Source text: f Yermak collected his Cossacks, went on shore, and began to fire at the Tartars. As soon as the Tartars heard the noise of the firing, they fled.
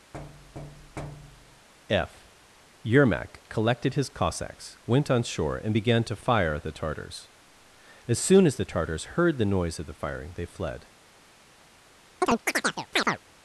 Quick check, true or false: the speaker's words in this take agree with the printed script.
true